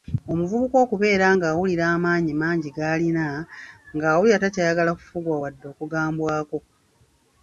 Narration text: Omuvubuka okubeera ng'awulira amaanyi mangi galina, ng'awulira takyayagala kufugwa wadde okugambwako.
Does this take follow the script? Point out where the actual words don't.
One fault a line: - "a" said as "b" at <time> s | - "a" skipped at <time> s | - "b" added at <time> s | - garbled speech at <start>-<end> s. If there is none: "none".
none